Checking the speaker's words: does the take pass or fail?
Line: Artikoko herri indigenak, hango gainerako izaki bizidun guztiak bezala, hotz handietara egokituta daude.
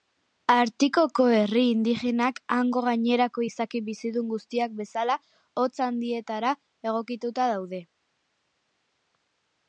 pass